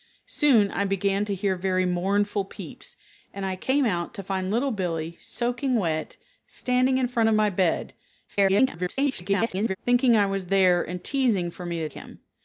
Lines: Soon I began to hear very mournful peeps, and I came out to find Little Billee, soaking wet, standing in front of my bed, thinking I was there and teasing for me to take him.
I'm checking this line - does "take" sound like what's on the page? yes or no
no